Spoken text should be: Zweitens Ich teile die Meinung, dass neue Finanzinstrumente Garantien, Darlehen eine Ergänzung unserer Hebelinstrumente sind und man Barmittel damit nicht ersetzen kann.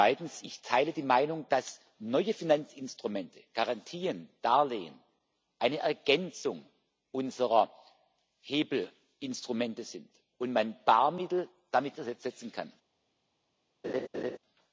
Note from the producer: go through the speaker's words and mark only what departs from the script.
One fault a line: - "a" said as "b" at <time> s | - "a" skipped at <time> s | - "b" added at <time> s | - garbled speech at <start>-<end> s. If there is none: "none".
- "nicht" skipped at 12.0 s